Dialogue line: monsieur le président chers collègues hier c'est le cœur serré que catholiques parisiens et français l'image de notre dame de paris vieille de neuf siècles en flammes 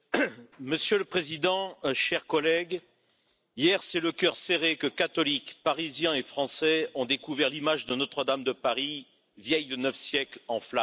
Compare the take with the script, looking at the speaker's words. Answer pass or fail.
fail